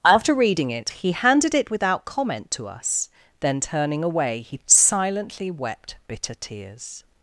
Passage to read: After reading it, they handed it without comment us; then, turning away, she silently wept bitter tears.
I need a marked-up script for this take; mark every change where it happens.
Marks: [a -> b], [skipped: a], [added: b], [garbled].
After reading it, [they -> he] handed it without comment [added: to] us; then, turning away, [she -> he] silently wept bitter tears.